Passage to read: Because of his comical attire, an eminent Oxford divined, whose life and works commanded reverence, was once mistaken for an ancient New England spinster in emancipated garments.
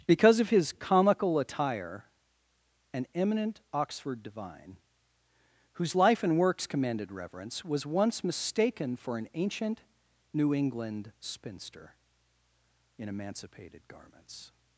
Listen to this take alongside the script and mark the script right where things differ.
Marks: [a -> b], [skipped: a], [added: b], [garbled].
Because of his comical attire, an eminent Oxford [divined, -> divine] whose life and works commanded reverence, was once mistaken for an ancient New England spinster in emancipated garments.